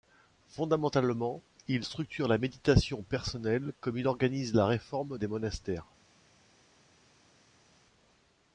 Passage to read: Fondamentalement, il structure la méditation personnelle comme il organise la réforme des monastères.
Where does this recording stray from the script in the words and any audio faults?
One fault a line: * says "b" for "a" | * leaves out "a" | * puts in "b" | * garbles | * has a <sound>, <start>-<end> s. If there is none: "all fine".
all fine